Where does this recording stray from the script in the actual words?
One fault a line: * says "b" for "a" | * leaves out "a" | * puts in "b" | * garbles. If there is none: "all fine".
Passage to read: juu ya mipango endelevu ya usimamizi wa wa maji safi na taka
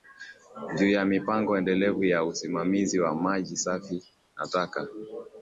* leaves out "wa"